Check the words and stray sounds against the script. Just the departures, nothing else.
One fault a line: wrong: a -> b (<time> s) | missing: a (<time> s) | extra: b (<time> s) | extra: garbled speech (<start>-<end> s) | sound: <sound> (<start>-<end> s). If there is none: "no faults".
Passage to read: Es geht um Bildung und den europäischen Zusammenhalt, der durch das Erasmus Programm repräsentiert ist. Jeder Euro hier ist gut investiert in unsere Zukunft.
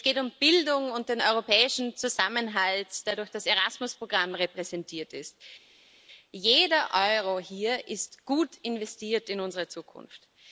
no faults